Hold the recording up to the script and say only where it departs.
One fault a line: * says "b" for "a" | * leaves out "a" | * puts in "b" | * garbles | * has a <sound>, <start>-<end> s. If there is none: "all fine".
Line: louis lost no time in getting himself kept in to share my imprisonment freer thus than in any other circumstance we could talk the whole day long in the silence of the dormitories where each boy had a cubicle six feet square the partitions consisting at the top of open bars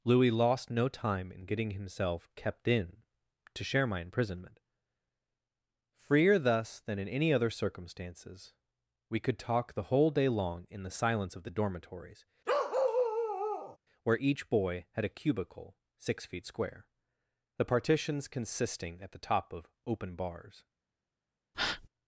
* says "circumstances" for "circumstance"
* has a bark, 12.5-13.8 s
* has a breath, 21.5-21.9 s